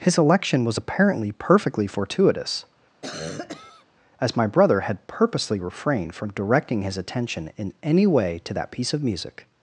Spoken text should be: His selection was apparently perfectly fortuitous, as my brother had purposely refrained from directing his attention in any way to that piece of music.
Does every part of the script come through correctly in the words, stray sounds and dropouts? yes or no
no